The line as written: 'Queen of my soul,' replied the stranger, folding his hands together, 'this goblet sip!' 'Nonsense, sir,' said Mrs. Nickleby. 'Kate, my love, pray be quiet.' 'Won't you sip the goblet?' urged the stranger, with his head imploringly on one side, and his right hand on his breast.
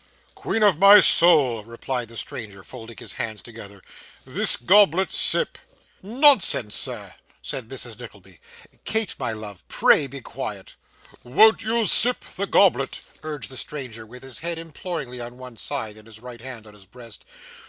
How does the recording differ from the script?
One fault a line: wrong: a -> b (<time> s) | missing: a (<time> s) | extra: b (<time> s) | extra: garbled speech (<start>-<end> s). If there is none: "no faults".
no faults